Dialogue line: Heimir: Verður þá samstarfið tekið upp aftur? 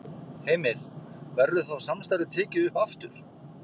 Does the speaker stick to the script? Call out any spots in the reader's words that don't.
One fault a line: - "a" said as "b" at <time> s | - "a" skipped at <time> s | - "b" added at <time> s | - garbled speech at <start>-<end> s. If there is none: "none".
none